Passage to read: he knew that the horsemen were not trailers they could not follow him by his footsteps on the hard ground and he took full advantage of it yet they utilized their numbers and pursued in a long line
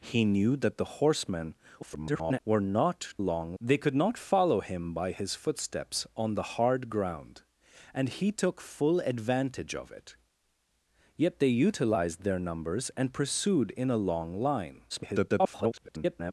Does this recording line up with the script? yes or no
no